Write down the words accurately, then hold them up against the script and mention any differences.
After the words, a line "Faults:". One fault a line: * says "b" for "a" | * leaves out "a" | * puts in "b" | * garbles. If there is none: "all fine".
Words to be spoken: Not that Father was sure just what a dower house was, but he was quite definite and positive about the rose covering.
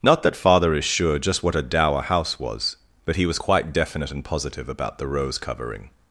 Not that Father is sure just what a dower house was, but he was quite definite and positive about the rose covering.
Faults:
* says "is" for "was"